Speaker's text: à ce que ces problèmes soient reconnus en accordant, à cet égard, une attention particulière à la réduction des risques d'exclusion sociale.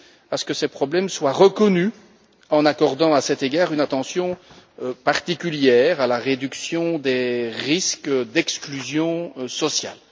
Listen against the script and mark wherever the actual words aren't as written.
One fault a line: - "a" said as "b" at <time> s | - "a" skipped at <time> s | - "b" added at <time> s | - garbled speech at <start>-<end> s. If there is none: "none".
none